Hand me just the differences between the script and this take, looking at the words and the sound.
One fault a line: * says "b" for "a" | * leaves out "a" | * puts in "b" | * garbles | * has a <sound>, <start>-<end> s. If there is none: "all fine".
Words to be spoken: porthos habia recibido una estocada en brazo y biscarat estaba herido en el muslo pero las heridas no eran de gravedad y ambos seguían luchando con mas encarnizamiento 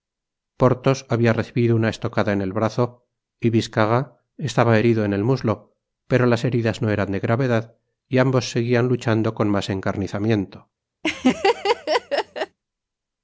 * puts in "el"
* has a laugh, 11.0-12.6 s